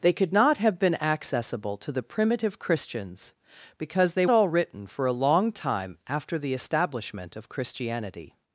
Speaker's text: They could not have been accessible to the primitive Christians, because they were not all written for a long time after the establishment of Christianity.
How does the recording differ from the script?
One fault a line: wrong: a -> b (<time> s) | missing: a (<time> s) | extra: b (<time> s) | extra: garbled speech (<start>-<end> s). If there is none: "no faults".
missing: were not (4.3 s)